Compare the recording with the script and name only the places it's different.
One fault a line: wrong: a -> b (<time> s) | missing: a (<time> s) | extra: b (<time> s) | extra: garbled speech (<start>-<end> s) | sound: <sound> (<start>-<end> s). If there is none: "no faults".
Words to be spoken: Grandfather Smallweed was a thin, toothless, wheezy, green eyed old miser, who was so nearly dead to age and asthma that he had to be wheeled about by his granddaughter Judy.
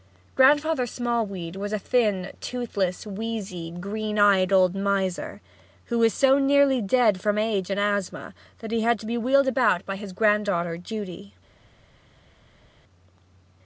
wrong: to -> from (7.2 s)